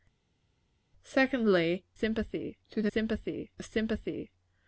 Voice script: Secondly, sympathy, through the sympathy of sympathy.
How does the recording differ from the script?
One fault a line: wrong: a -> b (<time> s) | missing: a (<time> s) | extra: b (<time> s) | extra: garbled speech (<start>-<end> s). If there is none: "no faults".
no faults